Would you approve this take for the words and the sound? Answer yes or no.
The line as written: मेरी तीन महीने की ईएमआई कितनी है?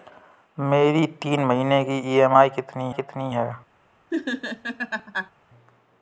no